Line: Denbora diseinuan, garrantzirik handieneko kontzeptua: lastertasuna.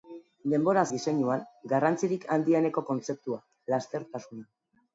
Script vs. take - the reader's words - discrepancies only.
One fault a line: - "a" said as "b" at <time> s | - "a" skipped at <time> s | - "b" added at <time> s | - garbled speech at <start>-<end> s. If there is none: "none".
none